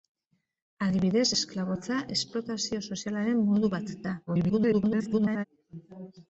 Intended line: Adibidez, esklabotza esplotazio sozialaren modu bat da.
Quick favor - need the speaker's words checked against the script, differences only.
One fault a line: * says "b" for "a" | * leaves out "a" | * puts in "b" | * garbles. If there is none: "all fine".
* garbles